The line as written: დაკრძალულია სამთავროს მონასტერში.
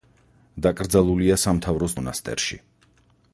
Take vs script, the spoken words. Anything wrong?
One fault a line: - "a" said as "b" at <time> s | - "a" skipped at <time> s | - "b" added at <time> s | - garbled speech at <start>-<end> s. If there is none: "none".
none